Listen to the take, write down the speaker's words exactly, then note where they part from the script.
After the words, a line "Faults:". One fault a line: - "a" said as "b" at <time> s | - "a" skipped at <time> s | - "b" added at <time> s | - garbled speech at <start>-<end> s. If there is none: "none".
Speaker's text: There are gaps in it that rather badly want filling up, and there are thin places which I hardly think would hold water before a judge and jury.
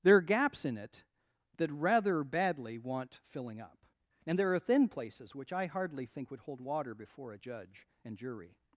There are gaps in it that rather badly want filling up, and there are thin places which I hardly think would hold water before a judge and jury.
Faults:
none